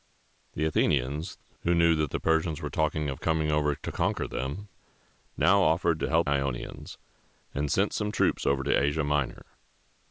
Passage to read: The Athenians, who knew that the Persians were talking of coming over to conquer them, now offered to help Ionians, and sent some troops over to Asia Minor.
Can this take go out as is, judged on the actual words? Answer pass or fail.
pass